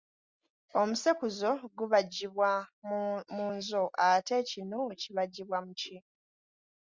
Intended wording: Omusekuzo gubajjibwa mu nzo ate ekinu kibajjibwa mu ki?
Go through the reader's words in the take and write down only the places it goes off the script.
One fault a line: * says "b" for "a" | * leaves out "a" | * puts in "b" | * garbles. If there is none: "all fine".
all fine